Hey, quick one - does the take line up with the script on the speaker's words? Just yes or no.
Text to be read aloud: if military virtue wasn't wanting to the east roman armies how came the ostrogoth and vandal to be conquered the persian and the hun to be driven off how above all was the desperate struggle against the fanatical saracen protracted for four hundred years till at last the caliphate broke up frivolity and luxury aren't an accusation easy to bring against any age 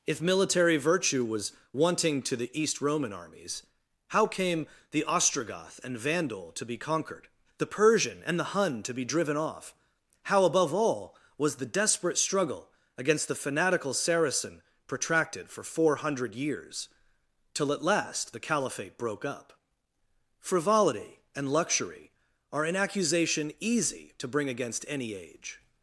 no